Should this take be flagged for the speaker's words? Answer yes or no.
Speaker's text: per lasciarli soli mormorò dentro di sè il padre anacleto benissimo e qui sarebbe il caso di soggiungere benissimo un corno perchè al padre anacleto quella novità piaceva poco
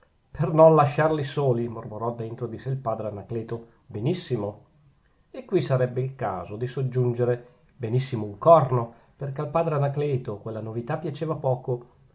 yes